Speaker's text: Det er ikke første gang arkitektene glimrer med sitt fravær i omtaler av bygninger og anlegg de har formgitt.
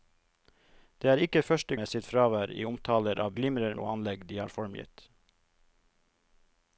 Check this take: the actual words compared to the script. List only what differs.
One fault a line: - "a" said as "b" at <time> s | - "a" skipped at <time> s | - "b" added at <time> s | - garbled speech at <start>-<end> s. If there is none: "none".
- "gang arkitektene glimrer" skipped at 1.8 s
- "bygninger" said as "glimrer" at 3.4 s